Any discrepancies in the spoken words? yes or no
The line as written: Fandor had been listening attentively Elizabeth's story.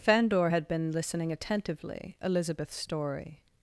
no